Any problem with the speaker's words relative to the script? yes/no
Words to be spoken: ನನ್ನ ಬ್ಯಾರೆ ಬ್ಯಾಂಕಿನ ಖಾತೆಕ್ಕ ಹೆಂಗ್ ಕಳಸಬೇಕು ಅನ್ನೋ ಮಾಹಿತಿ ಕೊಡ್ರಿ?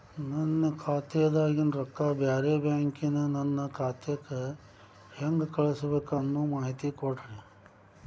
yes